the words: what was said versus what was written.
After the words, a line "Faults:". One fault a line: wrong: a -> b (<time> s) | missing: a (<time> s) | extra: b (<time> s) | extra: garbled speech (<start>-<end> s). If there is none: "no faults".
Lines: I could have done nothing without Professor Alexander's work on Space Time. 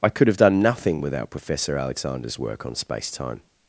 I could have done nothing without Professor Alexander's work on Space Time.
Faults:
no faults